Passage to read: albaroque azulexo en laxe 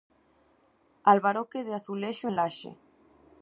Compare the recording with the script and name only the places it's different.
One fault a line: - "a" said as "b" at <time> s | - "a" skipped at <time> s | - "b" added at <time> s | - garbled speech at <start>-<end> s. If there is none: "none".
- "de" added at 1.6 s